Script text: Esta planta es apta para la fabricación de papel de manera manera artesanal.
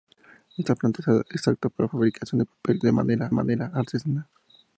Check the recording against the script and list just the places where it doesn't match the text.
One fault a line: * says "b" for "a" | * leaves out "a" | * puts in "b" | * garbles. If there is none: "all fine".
all fine